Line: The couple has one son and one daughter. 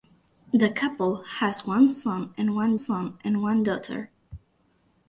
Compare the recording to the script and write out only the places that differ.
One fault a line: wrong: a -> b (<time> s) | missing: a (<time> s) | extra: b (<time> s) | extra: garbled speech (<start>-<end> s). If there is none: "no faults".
extra: son and one (2.7 s)